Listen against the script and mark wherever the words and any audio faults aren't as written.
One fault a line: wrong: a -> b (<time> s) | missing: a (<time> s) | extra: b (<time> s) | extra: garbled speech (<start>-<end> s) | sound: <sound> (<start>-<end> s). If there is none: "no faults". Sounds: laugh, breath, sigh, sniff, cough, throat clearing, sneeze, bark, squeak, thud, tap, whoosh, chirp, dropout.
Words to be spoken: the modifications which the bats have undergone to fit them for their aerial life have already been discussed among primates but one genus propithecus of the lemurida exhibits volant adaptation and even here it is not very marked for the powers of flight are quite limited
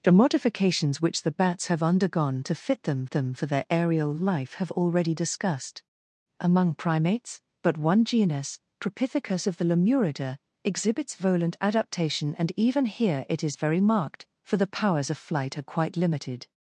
extra: them (3.1 s)
missing: been (5.1 s)
missing: not (13.6 s)